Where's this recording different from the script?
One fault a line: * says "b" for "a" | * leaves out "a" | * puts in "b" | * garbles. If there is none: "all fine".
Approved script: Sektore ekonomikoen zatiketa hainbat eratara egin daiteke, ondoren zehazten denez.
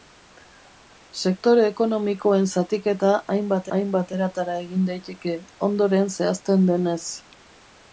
* puts in "hainbat"